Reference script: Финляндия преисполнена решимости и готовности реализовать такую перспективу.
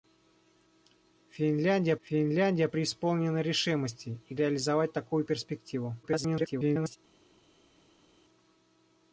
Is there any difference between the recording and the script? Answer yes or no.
yes